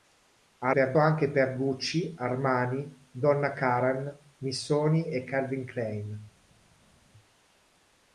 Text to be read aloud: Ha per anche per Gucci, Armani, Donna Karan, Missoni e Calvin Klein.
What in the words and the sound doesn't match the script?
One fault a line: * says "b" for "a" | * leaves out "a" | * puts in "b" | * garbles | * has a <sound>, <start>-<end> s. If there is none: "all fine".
all fine